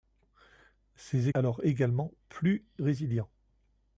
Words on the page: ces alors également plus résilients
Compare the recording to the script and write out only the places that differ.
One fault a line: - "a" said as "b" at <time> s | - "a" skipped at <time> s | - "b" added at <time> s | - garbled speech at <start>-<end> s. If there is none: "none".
none